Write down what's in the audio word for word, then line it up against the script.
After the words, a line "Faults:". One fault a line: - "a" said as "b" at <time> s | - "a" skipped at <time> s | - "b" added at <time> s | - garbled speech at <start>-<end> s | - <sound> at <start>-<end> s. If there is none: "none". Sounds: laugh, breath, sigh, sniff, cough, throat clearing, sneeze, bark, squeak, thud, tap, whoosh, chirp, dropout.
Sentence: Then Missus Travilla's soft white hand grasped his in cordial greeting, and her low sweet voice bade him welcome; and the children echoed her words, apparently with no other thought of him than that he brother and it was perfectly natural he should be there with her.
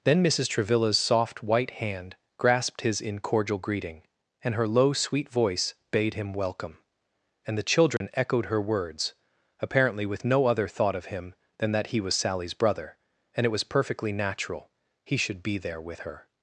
Then Missus Travilla's soft white hand grasped his in cordial greeting, and her low sweet voice bade him welcome; and the children echoed her words, apparently with no other thought of him than that he was Sally's brother and it was perfectly natural he should be there with her.
Faults:
- dropout at 8.0-8.0 s
- "was Sally's" added at 12.0 s